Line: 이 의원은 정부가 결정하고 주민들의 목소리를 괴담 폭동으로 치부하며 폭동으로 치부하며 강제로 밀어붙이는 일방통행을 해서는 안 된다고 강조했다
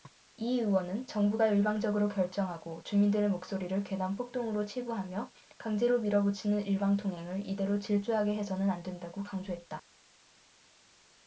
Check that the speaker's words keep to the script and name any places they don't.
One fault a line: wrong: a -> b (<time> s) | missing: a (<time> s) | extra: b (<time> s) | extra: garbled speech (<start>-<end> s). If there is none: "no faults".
extra: 일방적으로 (1.5 s)
missing: 폭동으로 치부하며 (5.3 s)
extra: 이대로 질주하게 (7.5 s)